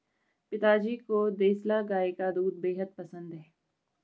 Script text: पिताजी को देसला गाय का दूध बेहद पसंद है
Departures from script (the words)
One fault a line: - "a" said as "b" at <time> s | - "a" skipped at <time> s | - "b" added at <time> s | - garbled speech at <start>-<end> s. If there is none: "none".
none